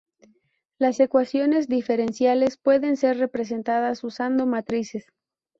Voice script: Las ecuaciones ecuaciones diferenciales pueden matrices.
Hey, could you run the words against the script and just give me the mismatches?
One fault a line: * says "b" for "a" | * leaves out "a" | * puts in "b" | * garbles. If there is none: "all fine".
* leaves out "ecuaciones"
* puts in "ser representadas usando"